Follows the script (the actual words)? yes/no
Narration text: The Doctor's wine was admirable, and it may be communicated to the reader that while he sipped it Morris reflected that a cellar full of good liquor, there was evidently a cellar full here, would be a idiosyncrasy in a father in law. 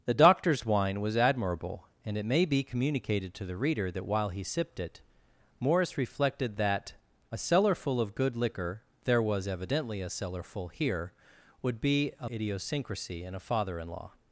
yes